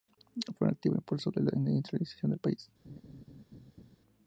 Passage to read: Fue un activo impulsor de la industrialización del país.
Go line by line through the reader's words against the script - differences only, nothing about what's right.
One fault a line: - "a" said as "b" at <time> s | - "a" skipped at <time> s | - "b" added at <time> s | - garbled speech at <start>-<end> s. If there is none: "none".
none